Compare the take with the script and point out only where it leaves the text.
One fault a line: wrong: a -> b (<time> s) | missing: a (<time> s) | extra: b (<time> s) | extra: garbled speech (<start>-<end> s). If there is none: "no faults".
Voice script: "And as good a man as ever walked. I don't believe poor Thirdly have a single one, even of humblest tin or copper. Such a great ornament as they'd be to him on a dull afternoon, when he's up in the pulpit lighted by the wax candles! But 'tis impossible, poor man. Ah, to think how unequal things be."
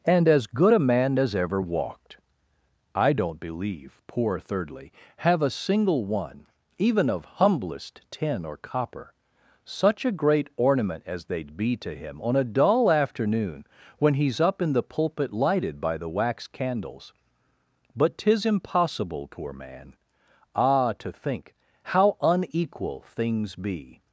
no faults